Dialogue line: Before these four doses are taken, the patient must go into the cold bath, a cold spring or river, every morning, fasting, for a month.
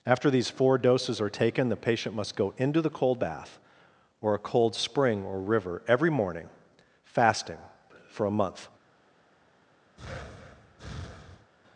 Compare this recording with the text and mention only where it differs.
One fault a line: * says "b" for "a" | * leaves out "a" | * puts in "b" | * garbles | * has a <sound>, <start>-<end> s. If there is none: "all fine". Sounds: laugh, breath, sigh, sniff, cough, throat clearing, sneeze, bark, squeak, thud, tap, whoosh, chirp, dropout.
* says "After" for "Before"
* puts in "or"
* has a breath, 10.0-11.5 s